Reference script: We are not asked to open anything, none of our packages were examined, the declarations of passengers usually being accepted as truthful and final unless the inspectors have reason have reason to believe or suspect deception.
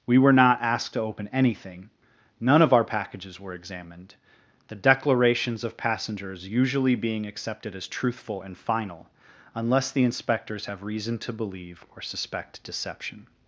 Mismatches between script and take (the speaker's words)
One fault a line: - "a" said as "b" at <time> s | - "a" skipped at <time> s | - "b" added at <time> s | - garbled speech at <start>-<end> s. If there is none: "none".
- "are" said as "were" at 0.2 s
- "have reason" skipped at 11.2 s